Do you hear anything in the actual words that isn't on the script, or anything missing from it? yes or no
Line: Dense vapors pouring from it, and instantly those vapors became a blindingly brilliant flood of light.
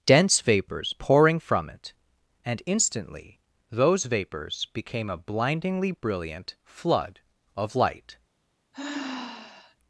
no